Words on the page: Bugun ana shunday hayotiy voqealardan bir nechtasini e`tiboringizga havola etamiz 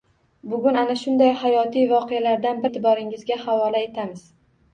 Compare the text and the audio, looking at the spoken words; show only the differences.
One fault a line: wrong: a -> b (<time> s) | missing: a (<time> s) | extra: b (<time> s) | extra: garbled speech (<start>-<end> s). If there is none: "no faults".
missing: bir nechtasini (2.6 s)